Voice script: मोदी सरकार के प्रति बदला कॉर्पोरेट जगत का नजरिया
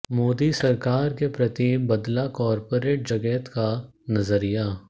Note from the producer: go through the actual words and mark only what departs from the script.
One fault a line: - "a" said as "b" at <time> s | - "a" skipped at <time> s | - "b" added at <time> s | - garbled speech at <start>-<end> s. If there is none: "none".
none